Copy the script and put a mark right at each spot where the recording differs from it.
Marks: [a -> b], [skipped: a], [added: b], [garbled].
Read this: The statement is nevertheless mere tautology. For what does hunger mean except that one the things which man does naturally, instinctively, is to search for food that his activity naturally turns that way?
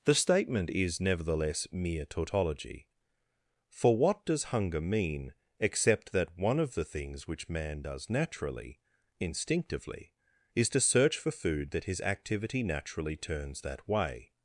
The statement is nevertheless mere tautology. For what does hunger mean except that one [added: of] the things which man does naturally, instinctively, is to search for food that his activity naturally turns that way?